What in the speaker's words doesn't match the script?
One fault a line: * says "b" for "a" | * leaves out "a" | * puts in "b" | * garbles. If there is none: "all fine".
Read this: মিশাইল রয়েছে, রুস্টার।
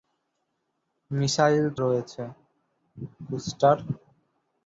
all fine